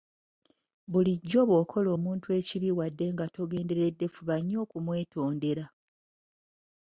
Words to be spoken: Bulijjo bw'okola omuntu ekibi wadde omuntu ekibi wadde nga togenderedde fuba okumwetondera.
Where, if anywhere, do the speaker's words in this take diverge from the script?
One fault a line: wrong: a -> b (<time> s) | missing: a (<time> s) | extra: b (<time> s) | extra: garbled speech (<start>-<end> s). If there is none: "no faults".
missing: omuntu ekibi wadde (3.1 s)
extra: nnyo (4.4 s)